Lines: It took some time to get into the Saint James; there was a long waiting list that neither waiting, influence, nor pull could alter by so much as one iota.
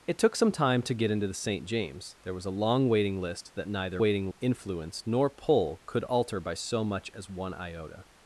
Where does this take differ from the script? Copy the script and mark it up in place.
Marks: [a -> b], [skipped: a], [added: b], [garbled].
It took some time to get into the Saint James; there was a long waiting list that neither waiting, influence, nor pull could alter by so much as one iota.